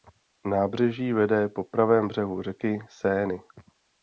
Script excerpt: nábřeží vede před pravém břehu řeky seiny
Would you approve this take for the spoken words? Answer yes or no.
no